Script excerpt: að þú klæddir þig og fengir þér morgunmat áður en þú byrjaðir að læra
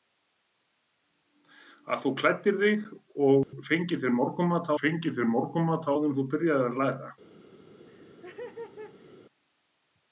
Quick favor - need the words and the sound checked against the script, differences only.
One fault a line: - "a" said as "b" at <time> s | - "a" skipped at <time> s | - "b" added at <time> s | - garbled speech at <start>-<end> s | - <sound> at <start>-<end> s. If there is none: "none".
- dropout at 3.4-3.5 s
- "fengir þér morgunmat" added at 4.8 s
- laugh at 7.9-9.2 s